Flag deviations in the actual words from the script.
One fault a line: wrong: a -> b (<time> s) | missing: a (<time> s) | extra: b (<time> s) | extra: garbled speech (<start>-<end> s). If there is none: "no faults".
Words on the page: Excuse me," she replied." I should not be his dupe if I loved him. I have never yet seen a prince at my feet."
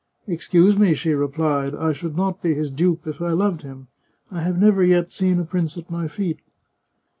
no faults